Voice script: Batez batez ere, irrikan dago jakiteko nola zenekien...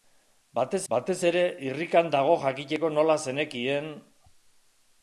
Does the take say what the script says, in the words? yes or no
yes